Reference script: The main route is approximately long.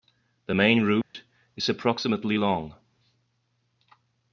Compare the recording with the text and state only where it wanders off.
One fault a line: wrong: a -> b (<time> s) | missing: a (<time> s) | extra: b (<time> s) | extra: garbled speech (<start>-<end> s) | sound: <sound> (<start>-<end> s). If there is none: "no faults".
sound: dropout (1.0-1.1 s)